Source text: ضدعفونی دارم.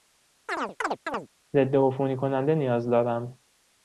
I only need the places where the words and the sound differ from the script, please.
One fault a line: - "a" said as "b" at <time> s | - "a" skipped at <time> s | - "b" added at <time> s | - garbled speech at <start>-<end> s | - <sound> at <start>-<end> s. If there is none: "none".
- chirp at 0.5-1.3 s
- "کننده نیاز" added at 2.2 s